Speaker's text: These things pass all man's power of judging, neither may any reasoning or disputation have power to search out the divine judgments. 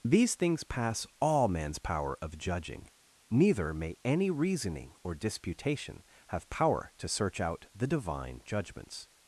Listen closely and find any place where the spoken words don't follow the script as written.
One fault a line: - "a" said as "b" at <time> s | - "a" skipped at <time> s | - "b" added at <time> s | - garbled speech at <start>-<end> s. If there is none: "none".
none